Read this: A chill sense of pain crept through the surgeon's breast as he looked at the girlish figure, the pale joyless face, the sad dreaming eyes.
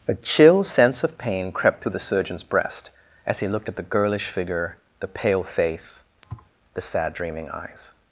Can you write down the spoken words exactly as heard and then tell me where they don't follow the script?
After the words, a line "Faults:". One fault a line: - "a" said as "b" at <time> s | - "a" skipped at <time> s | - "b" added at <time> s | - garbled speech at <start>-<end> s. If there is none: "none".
A chill sense of pain crept through the surgeon's breast as he looked at the girlish figure, the pale face, the sad dreaming eyes.
Faults:
- "joyless" skipped at 5.4 s